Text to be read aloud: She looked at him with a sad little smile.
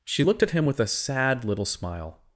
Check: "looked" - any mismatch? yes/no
no